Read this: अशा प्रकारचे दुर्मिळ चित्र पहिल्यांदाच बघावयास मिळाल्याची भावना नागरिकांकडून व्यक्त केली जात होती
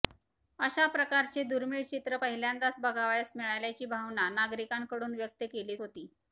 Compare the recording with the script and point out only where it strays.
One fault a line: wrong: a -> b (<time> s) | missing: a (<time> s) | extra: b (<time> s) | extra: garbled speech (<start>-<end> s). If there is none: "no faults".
missing: जात (5.8 s)